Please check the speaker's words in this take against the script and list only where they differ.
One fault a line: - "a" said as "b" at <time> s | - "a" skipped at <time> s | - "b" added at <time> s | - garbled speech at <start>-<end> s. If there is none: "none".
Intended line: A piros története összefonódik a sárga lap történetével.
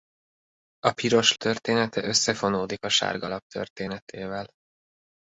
none